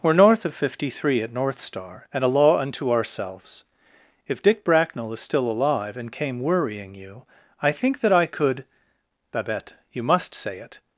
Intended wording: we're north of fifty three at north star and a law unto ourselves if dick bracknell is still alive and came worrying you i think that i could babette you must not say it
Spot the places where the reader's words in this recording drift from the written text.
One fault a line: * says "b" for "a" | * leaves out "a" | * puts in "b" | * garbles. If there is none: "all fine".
* leaves out "not"